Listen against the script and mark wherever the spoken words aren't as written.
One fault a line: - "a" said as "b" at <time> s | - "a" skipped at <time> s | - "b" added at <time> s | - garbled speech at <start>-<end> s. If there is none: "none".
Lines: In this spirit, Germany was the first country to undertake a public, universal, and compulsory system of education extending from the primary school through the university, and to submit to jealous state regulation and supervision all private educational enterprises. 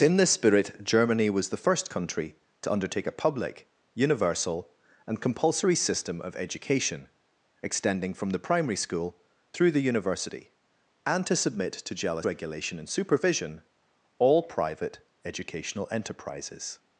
- "state" skipped at 12.3 s